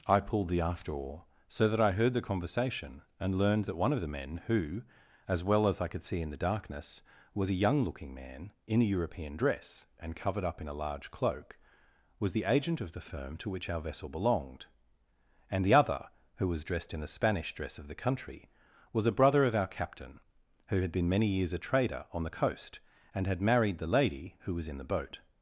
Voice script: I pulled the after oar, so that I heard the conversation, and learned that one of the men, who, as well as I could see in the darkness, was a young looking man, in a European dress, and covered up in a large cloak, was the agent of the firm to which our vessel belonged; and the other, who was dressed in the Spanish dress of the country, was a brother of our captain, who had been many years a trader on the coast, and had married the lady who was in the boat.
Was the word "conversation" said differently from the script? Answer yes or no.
no